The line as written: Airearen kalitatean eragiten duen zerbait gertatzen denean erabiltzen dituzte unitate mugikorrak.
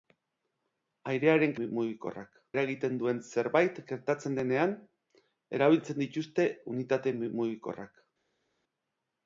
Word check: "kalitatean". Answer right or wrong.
wrong